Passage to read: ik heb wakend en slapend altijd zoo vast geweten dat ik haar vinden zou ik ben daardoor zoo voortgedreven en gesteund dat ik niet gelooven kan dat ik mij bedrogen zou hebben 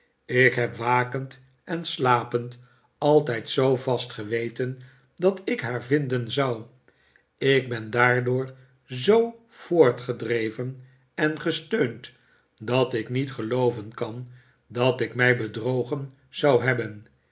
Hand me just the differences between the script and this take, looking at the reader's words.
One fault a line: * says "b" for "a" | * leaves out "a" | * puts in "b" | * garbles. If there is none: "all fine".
all fine